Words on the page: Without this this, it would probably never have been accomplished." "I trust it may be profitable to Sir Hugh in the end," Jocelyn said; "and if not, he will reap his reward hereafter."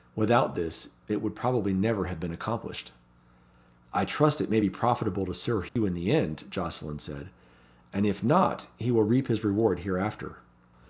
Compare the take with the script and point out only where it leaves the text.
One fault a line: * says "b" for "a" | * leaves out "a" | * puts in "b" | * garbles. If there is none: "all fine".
* leaves out "this"